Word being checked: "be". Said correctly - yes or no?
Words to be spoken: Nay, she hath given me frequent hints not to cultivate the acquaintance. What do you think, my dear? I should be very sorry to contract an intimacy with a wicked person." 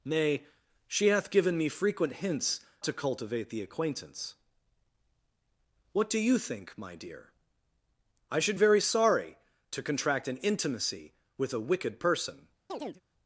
no